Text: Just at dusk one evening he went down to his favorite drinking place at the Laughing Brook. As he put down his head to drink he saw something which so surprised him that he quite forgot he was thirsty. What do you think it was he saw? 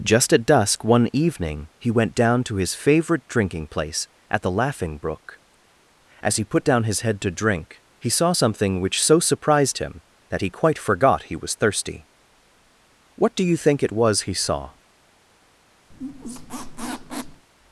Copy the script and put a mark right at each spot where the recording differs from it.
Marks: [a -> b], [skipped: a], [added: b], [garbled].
Just at dusk one evening he went down to his favorite drinking place at the Laughing Brook. As he put down his head to drink he saw something which so surprised him that he quite forgot he was thirsty. What do you think it was he saw?